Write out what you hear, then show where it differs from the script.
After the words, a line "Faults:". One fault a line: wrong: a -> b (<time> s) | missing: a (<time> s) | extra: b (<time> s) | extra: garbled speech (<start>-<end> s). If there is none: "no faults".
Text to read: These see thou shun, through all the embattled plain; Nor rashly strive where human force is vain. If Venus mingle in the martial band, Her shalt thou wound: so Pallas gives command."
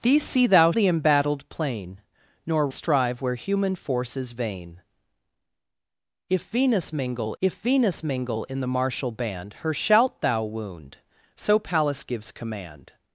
These see thou the embattled plain; Nor strive where human force is vain. If Venus mingle if Venus mingle in the martial band, Her shalt thou wound: so Pallas gives command."
Faults:
missing: shun through all (0.7 s)
missing: rashly (2.7 s)
extra: if Venus mingle (7.4 s)